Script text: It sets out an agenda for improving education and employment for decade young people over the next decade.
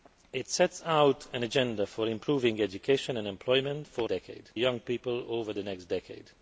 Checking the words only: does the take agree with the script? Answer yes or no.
yes